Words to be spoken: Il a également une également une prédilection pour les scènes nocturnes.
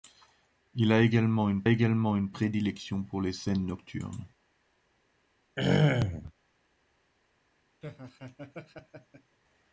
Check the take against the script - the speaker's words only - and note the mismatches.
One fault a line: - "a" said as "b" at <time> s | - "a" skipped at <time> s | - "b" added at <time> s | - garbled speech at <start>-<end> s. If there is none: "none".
none